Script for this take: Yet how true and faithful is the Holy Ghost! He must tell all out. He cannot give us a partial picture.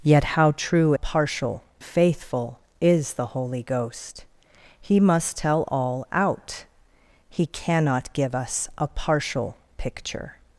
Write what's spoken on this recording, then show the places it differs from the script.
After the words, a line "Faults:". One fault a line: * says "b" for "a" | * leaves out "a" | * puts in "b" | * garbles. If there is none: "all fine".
Yet how true partial faithful is the Holy Ghost! He must tell all out. He cannot give us a partial picture.
Faults:
* says "partial" for "and"